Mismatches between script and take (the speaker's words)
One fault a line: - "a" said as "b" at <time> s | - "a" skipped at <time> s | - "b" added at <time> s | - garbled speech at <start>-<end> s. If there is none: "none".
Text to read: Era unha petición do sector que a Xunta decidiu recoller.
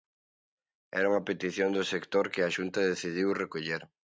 none